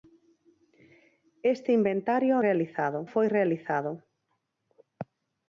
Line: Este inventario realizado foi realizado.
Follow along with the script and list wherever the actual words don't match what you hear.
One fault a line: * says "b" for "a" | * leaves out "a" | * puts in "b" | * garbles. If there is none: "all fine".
all fine